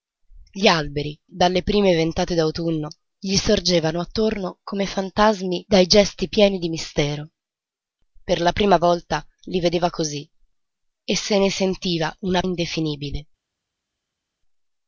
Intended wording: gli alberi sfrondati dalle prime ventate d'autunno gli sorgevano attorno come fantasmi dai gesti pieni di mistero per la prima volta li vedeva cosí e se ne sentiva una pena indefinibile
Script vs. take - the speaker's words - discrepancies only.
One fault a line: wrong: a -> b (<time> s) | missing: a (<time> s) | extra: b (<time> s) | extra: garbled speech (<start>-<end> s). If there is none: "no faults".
missing: sfrondati (1.1 s)
missing: pena (12.4 s)